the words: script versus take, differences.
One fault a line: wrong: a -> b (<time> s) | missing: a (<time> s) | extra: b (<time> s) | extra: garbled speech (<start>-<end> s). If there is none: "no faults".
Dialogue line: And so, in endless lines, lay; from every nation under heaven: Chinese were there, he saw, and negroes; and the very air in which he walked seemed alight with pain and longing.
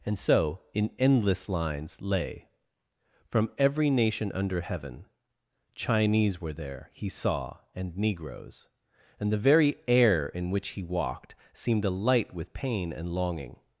no faults